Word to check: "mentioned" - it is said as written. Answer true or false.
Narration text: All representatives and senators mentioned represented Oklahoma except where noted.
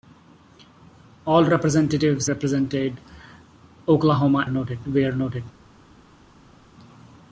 false